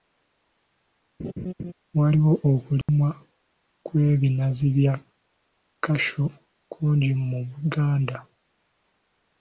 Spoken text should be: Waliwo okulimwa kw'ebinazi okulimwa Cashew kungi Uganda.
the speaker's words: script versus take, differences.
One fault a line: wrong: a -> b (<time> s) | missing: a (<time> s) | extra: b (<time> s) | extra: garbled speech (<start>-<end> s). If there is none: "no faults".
wrong: okulimwa -> bya (4.8 s)
extra: mu (7.3 s)